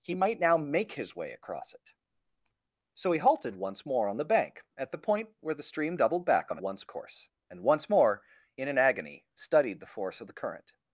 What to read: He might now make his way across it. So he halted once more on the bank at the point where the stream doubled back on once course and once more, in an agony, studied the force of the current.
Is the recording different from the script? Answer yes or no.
no